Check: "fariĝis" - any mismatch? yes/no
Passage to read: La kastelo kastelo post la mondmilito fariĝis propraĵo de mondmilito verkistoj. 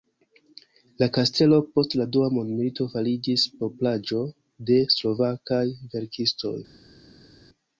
no